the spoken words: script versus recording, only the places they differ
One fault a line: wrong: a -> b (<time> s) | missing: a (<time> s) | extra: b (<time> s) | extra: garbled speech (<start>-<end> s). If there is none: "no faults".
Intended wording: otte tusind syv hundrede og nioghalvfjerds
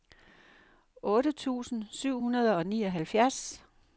no faults